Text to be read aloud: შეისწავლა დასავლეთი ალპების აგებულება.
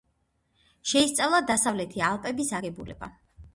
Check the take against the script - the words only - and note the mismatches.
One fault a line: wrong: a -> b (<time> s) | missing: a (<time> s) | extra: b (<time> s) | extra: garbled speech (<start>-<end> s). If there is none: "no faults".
no faults